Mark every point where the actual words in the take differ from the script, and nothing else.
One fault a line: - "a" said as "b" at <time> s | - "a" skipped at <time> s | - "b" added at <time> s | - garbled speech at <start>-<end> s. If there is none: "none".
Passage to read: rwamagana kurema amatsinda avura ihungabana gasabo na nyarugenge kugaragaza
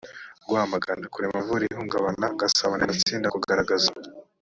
- "amatsinda" skipped at 1.4 s
- "nyarugenge" said as "amatsinda" at 2.8 s